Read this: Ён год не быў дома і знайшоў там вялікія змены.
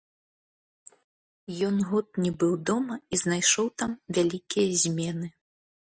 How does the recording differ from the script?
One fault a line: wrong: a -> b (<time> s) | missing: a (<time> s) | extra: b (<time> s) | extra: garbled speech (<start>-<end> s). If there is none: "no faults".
no faults